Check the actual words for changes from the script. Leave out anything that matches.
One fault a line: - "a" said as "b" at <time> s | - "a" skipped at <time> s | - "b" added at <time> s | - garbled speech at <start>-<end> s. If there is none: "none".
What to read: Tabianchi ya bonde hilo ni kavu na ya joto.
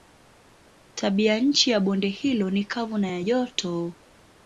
none